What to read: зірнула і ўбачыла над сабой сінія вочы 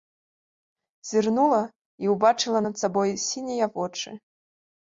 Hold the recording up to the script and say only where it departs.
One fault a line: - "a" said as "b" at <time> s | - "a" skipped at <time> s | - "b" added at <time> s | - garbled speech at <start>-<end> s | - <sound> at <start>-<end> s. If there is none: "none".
none